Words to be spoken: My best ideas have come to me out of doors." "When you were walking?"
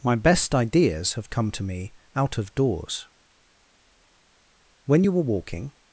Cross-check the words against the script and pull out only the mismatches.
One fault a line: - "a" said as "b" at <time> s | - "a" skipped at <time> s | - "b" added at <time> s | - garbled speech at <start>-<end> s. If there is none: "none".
none